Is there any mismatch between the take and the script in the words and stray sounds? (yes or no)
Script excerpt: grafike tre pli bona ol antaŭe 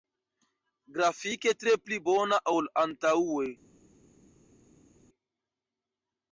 no